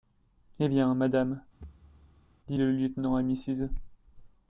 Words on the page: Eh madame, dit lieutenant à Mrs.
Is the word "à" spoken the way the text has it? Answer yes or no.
yes